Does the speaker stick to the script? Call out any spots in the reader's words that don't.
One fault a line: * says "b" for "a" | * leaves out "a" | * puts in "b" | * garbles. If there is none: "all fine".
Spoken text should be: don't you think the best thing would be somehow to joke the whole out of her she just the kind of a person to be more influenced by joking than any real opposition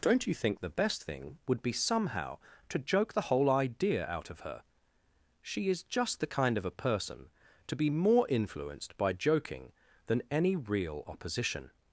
* puts in "idea"
* puts in "is"